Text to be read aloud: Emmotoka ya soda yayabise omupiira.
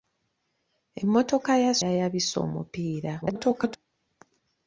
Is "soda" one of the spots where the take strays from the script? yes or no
yes